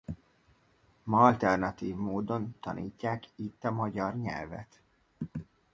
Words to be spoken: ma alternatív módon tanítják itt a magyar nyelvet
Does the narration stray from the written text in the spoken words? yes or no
no